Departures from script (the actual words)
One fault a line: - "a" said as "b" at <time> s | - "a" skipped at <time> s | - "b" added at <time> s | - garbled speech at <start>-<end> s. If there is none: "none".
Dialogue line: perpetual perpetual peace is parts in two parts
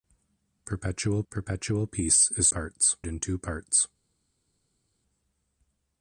none